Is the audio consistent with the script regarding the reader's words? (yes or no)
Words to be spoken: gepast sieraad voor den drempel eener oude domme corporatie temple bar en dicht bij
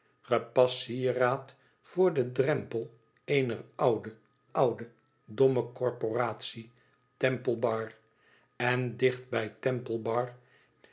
no